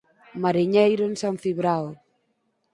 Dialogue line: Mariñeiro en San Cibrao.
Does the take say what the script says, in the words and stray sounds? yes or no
yes